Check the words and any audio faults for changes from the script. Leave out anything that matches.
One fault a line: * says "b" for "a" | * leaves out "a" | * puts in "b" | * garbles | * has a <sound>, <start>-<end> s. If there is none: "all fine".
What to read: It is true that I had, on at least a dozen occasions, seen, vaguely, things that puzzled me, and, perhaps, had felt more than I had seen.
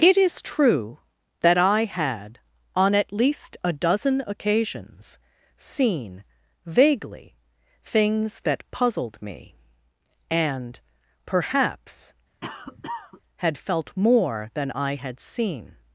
* has a cough, 12.4-13.2 s